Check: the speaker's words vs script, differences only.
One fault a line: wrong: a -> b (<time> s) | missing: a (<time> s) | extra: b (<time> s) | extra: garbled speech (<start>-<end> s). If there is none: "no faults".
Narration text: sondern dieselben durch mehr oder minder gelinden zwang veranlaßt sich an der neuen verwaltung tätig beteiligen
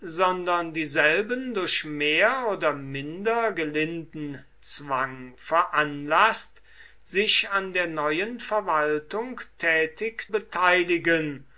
no faults